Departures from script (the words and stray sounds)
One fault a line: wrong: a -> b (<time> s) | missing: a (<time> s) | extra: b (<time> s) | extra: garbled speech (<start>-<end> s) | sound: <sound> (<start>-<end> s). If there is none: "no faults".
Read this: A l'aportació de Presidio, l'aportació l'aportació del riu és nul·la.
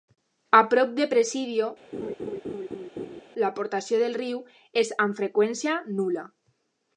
wrong: l'aportació -> prop (0.7 s)
sound: laugh (1.9-3.2 s)
missing: l'aportació (4.0 s)
extra: amb freqüència (5.0 s)